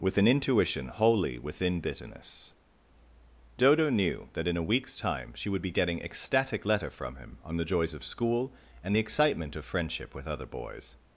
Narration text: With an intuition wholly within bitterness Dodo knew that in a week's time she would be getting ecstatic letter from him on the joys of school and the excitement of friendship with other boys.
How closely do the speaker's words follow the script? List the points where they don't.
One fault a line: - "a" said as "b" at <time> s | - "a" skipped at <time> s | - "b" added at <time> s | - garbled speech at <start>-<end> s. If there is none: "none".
none